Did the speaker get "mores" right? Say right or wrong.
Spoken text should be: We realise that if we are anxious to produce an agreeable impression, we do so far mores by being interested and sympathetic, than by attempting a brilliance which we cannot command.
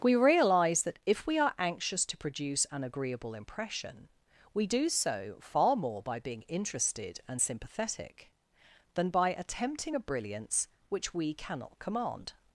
wrong